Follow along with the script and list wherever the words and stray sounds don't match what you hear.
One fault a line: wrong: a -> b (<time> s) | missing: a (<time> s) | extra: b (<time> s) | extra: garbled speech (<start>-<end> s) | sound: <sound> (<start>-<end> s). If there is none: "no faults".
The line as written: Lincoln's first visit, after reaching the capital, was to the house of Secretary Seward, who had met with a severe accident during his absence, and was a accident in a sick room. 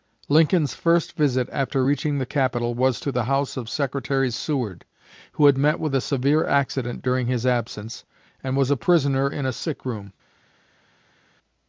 wrong: accident -> prisoner (8.8 s)